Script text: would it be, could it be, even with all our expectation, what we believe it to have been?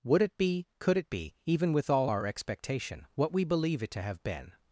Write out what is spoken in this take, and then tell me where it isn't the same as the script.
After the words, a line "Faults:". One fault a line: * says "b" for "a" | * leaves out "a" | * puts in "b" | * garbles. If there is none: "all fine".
would it be, could it be, even with all our expectation, what we believe it to have been?
Faults:
all fine